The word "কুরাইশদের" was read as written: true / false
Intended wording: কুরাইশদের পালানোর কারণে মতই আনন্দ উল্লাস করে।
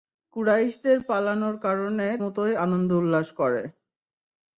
true